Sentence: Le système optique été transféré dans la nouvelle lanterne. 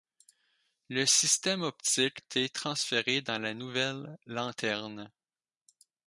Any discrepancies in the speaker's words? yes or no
no